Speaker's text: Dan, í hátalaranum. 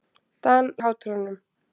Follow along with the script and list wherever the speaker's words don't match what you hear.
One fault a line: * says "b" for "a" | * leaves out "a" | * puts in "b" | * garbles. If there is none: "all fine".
all fine